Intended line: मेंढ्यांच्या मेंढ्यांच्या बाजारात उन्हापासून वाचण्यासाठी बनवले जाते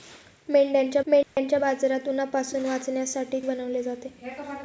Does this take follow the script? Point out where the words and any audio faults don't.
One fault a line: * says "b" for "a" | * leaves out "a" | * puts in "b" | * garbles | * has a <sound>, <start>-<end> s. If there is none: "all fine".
* has a dropout, 1.2-1.4 s